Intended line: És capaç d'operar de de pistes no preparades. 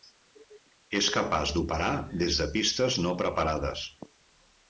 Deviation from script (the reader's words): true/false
true